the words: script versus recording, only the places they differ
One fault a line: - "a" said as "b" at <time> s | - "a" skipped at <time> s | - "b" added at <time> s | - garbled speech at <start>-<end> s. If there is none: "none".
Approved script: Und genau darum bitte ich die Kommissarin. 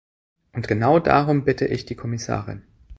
none